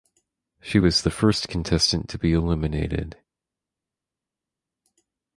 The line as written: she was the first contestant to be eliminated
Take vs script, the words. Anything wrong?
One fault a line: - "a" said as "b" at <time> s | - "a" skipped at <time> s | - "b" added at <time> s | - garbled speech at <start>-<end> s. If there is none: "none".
none